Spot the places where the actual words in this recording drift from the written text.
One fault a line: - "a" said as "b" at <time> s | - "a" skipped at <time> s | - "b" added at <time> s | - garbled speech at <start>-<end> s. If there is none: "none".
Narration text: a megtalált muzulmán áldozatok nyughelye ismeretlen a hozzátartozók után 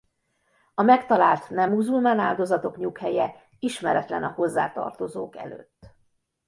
- "nem" added at 1.5 s
- "után" said as "előtt" at 5.4 s